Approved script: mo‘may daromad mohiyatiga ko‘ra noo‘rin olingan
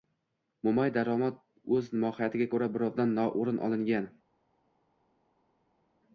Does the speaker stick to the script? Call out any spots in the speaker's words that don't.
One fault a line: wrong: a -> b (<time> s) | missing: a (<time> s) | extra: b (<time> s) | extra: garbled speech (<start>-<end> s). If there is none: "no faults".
extra: o‘z (1.8 s)
extra: birovdan (2.8 s)